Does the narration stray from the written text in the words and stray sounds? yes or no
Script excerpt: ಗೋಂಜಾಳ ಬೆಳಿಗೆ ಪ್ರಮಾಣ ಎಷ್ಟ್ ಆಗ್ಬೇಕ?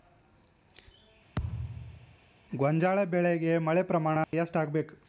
yes